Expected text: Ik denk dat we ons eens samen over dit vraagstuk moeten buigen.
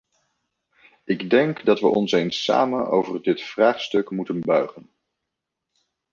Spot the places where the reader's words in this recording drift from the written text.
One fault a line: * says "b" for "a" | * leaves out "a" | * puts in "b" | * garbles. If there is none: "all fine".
all fine